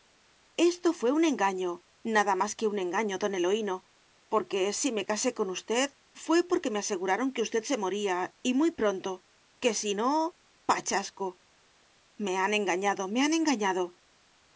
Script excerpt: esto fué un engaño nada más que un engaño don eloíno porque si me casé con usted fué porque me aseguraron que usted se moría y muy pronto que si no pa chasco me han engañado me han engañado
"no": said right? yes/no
yes